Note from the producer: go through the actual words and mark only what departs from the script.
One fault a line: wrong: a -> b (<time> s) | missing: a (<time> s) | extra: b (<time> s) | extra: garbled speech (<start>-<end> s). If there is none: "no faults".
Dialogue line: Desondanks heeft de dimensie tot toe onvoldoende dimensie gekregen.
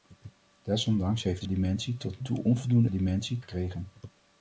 no faults